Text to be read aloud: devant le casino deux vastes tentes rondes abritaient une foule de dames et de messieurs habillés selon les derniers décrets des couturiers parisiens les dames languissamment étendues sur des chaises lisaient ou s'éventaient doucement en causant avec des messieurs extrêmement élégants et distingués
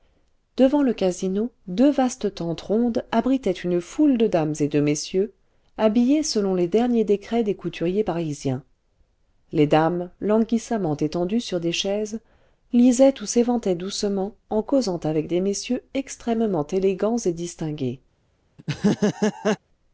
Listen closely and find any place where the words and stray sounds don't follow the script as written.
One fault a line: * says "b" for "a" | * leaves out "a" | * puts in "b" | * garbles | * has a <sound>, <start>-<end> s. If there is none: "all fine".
* has a laugh, 18.6-19.6 s